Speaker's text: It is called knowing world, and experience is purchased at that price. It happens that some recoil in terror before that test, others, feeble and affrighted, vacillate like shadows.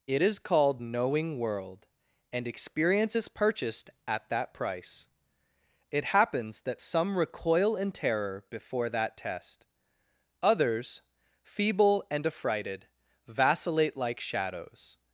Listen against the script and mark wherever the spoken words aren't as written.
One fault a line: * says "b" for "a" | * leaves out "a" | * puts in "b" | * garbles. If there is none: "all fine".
all fine